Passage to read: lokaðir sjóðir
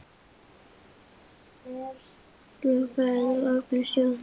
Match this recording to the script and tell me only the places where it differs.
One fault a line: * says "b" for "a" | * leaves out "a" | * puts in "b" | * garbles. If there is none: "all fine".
* puts in "eða opnir"